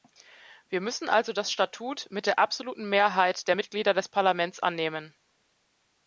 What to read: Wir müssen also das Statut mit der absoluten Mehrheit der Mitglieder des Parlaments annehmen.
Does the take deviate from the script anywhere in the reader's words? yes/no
no